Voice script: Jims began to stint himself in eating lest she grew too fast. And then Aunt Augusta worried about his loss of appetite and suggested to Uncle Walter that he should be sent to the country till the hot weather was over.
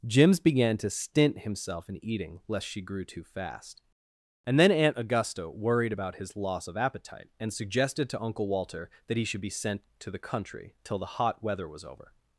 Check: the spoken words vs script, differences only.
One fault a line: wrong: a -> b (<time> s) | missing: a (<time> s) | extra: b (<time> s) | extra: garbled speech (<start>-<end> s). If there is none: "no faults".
no faults